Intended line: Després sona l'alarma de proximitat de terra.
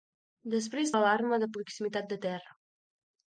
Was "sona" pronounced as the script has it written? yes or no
no